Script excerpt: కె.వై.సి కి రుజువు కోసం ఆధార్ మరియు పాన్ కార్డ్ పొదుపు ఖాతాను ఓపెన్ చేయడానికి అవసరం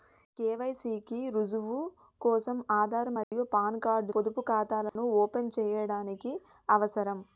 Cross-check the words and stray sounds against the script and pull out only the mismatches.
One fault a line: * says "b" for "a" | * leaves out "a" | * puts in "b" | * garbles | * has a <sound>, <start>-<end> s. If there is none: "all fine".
* has a dropout, 3.2-3.3 s
* has a dropout, 4.9-5.0 s